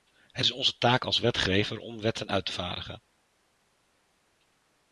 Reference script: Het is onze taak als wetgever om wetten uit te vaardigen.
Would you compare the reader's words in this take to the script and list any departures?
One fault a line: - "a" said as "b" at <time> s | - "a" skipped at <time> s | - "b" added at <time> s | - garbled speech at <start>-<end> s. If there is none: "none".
none